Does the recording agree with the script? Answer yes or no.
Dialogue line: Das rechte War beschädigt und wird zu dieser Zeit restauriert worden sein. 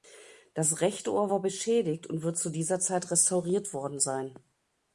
no